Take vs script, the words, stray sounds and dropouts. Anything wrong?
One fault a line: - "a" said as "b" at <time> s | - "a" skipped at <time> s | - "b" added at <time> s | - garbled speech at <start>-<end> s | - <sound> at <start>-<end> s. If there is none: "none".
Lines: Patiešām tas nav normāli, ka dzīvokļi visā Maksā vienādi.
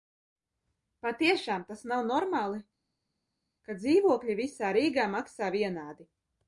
- "Rīgā" added at 4.8 s